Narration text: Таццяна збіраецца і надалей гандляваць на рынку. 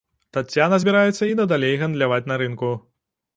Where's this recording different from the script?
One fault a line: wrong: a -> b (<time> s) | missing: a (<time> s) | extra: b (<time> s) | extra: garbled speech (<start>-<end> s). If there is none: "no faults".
no faults